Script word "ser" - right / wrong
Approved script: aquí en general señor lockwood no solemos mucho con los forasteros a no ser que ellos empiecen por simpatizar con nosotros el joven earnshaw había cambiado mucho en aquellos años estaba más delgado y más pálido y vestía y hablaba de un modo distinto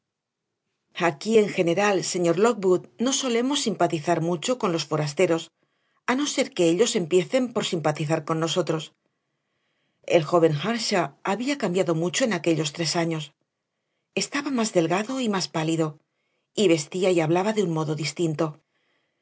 right